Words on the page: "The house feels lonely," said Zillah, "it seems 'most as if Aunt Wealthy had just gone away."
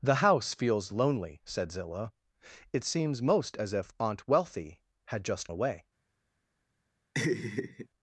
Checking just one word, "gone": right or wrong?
wrong